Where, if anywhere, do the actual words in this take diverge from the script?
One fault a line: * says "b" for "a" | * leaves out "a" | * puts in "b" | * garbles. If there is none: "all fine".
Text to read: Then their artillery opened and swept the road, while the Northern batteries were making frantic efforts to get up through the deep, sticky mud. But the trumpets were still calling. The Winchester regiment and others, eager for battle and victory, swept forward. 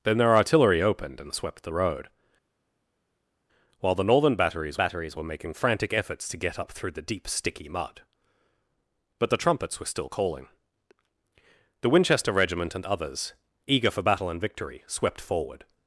* puts in "batteries"